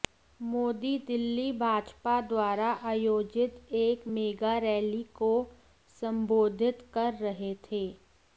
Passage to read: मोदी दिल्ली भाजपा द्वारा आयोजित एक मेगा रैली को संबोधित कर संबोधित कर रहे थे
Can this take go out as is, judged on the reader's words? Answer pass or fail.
fail